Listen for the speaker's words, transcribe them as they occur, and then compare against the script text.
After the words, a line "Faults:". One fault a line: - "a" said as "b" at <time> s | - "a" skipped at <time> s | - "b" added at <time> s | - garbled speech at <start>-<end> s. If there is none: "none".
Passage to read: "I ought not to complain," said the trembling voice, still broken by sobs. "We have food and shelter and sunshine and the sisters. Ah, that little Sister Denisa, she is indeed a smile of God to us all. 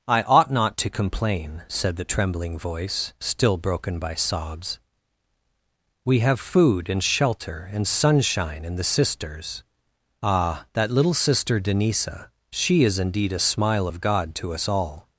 "I ought not to complain," said the trembling voice, still broken by sobs. "We have food and shelter and sunshine and the sisters. Ah, that little Sister Denisa, she is indeed a smile of God to us all.
Faults:
none